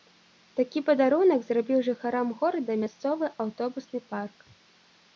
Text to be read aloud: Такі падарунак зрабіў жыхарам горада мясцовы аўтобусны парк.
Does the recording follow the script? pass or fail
pass